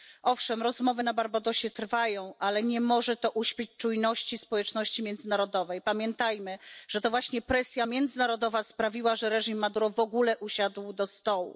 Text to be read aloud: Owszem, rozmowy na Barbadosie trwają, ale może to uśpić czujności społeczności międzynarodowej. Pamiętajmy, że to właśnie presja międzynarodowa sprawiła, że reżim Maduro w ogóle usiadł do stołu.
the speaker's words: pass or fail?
fail